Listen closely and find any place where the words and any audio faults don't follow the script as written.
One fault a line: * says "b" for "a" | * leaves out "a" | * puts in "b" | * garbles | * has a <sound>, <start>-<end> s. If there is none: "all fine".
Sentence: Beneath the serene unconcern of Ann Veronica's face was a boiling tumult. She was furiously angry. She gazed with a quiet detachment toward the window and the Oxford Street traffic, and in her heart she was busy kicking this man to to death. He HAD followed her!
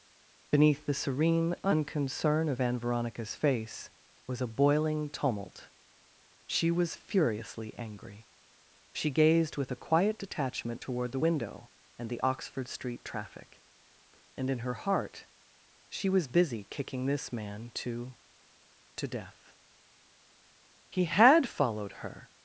all fine